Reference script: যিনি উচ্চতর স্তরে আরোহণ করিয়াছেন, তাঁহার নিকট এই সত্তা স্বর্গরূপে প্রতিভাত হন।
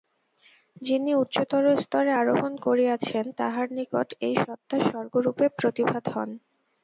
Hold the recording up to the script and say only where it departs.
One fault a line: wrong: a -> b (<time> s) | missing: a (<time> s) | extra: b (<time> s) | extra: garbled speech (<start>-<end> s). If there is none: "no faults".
no faults